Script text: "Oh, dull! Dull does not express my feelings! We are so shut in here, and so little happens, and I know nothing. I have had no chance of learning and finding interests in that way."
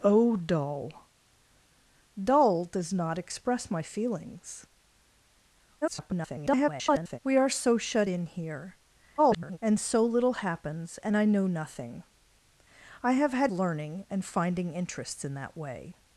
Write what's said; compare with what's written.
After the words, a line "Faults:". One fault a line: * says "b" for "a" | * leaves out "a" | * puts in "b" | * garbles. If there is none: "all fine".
"Oh, dull! Dull does not express my feelings! [garbled] We are so shut in here, [garbled] and so little happens, and I know nothing. I have had learning and finding interests in that way."
Faults:
* garbles
* garbles
* leaves out "no chance of"